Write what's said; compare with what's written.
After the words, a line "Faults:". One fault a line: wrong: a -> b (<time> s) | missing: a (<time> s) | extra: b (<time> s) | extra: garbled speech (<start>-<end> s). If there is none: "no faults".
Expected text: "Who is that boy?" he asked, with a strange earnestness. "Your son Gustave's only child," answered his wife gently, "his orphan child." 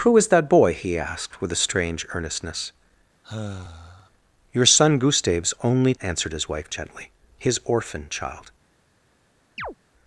"Who is that boy?" he asked, with a strange earnestness. "Your son Gustave's only," answered his wife gently, "his orphan child."
Faults:
missing: child (6.0 s)